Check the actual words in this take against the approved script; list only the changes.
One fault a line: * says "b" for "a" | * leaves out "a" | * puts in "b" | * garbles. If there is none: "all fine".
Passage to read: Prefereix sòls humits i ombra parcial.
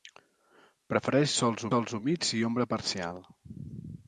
* puts in "sòls"